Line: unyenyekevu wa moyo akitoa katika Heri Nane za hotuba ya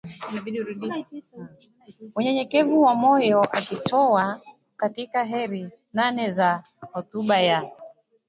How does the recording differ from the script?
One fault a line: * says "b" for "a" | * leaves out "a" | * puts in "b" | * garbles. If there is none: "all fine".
all fine